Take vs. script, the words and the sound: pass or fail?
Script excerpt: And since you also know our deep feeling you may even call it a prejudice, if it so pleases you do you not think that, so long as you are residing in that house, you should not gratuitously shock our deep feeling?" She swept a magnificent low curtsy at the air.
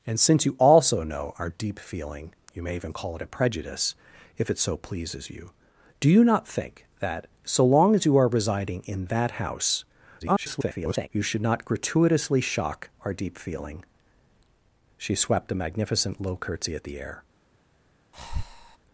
fail